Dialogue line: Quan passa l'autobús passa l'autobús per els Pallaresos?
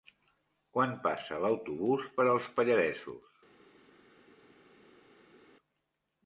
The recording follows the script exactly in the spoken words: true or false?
false